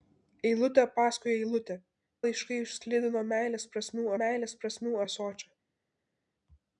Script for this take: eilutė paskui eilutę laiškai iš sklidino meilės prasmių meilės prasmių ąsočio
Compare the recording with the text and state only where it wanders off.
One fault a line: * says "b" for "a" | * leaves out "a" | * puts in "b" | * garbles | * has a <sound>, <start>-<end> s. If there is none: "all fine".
all fine